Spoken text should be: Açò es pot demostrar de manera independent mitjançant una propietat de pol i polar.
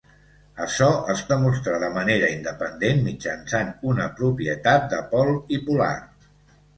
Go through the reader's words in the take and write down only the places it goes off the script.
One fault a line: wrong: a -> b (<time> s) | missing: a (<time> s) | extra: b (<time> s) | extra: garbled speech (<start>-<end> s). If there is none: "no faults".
missing: pot (1.2 s)